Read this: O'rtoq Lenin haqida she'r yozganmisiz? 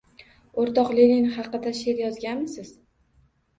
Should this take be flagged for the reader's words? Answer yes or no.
no